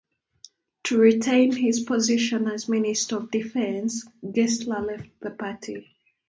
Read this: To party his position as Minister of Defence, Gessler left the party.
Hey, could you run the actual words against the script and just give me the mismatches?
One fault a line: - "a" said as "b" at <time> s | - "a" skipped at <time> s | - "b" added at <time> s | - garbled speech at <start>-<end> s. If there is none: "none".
- "party" said as "retain" at 1.0 s